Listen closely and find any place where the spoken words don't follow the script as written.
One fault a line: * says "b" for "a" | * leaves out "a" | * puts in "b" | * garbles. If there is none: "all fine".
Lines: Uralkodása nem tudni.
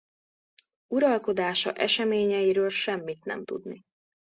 * puts in "eseményeiről semmit"